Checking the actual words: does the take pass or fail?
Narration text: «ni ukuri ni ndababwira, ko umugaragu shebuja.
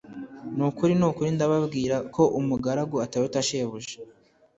fail